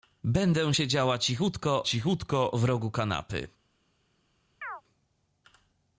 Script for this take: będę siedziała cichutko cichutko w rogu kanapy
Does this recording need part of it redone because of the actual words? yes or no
no